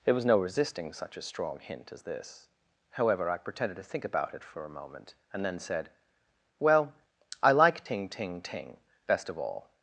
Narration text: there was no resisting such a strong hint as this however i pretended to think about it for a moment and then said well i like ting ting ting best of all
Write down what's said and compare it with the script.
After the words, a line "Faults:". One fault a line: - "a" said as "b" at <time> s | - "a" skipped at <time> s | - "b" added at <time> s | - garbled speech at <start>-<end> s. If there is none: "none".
there was no resisting such a strong hint as this however i pretended to think about it for a moment and then said well i like ting ting ting best of all
Faults:
none